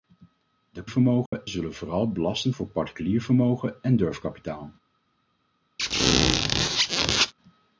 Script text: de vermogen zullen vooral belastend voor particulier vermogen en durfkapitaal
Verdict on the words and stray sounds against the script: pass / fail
fail